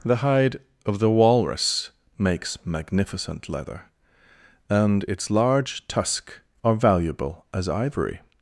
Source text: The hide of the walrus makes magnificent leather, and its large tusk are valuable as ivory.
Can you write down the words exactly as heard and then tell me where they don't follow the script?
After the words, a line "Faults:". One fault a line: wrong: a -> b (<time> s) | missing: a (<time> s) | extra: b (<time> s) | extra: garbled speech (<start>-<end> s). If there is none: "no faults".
The hide of the walrus makes magnificent leather, and its large tusk are valuable as ivory.
Faults:
no faults